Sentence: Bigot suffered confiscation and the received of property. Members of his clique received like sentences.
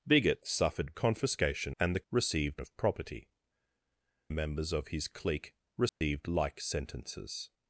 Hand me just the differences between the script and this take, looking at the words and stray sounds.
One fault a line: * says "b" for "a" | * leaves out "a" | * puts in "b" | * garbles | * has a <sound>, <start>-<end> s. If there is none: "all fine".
* has a dropout, 5.9-6.0 s